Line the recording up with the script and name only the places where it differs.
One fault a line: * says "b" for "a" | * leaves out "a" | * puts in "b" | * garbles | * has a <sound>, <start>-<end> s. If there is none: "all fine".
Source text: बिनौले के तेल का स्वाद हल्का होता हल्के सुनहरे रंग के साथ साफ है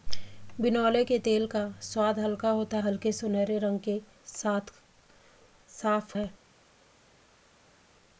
all fine